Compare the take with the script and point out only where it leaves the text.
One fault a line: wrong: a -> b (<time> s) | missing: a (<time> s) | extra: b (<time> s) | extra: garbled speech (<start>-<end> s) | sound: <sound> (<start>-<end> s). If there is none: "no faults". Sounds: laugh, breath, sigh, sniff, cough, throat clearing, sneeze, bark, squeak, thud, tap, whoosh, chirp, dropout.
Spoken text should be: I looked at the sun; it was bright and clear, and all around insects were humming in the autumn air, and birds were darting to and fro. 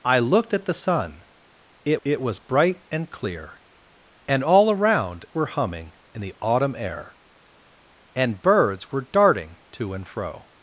extra: it (2.0 s)
missing: insects (5.2 s)